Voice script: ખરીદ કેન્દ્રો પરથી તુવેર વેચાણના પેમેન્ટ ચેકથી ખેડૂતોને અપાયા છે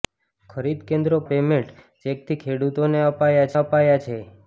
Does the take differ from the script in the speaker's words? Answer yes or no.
yes